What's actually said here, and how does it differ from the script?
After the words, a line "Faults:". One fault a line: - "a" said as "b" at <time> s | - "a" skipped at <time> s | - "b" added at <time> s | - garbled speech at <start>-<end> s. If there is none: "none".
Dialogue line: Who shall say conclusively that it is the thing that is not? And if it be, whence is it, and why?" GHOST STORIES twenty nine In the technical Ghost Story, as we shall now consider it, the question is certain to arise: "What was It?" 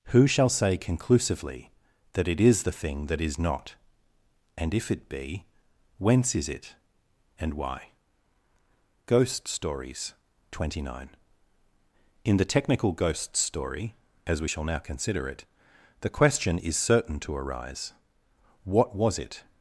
Who shall say conclusively that it is the thing that is not? And if it be, whence is it, and why?" GHOST STORIES twenty nine In the technical Ghost Story, as we shall now consider it, the question is certain to arise: "What was It?"
Faults:
none